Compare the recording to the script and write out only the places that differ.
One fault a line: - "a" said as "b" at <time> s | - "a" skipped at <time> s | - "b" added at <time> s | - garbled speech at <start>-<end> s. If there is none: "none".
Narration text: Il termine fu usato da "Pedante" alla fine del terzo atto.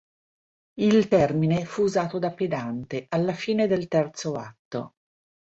none